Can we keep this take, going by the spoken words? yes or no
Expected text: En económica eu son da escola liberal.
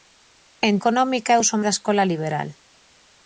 yes